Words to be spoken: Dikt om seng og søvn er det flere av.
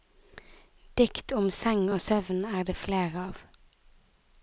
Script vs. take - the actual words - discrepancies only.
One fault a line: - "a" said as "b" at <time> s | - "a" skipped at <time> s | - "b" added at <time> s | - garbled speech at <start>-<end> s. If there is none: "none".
none